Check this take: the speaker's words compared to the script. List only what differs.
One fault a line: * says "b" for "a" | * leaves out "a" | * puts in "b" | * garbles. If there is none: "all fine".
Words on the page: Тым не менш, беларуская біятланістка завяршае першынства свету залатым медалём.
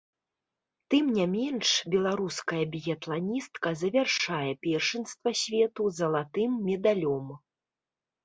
all fine